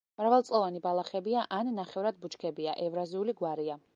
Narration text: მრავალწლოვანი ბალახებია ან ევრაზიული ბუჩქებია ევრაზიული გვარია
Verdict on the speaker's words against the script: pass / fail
fail